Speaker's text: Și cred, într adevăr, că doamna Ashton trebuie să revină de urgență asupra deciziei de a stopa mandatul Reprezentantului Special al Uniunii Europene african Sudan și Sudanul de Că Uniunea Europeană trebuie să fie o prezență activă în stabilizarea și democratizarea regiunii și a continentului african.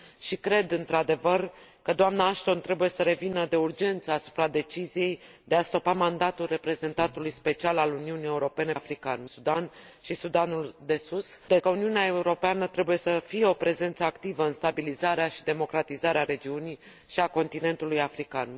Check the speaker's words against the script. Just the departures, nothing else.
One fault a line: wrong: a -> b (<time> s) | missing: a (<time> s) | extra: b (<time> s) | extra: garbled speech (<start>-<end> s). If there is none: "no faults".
no faults